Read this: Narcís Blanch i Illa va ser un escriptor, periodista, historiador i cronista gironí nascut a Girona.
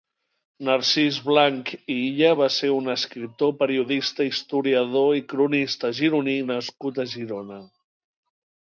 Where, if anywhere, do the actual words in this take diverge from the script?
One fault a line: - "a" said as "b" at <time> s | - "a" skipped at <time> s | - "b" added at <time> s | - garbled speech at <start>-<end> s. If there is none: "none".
none